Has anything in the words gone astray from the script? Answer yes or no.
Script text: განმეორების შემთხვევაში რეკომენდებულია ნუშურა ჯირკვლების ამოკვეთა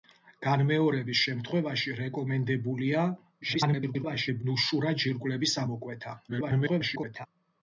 yes